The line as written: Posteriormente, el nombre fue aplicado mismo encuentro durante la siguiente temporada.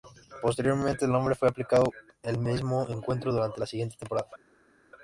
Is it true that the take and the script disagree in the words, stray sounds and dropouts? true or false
true